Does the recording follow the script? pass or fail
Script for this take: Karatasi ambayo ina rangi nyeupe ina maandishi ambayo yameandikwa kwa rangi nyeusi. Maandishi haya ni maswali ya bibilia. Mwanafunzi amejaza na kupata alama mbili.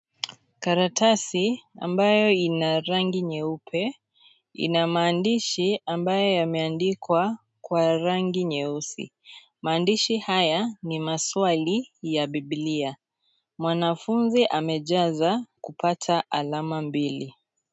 fail